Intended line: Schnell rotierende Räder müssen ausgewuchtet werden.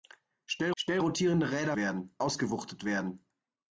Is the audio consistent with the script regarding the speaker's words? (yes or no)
no